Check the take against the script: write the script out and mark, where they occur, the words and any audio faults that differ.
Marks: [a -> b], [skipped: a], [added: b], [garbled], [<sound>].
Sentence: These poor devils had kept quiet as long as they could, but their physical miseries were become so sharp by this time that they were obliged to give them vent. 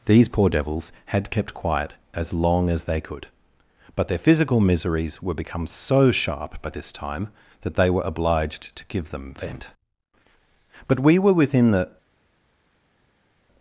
These poor devils had kept quiet as long as they could, but their physical miseries were become so sharp by this time that they were obliged to give them vent. [added: But we were within the]